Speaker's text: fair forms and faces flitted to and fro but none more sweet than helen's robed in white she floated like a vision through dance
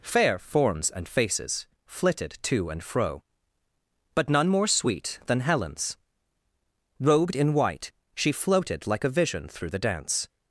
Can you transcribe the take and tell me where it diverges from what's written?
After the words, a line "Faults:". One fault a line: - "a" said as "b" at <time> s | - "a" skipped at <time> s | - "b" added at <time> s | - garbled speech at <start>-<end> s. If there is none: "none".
fair forms and faces flitted to and fro but none more sweet than helen's robed in white she floated like a vision through the dance
Faults:
- "the" added at 9.7 s